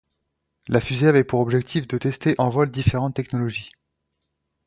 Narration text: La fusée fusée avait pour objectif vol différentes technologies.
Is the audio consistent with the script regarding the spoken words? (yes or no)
no